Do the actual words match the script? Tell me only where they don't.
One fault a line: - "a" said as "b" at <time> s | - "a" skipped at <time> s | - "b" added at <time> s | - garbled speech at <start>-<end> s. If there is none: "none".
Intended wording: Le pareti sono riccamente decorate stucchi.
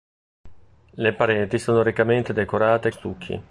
none